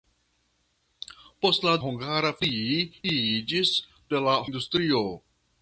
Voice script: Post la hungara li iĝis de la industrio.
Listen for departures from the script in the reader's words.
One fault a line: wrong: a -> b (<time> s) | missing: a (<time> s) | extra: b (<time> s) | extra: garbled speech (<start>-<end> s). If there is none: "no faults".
no faults